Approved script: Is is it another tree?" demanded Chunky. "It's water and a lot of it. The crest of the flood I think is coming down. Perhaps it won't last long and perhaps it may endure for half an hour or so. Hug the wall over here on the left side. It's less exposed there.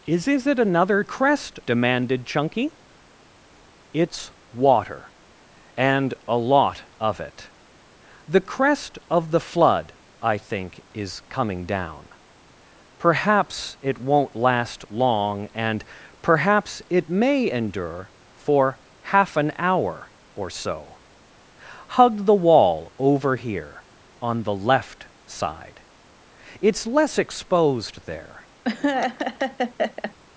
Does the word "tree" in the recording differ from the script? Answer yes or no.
yes